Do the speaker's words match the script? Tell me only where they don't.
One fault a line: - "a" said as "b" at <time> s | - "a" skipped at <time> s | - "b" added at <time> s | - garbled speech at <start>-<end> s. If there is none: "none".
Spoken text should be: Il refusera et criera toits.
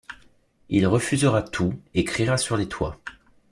- "tout" added at 1.4 s
- "sur les" added at 2.4 s